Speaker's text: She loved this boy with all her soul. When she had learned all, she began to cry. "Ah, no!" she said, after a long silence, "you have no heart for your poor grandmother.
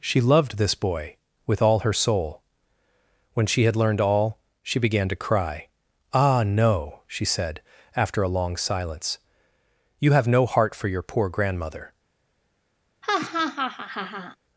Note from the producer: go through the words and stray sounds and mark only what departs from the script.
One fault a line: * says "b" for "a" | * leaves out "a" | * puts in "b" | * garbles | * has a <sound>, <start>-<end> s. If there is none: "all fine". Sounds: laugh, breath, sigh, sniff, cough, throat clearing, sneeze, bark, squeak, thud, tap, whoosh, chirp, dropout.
* has a laugh, 13.0-14.4 s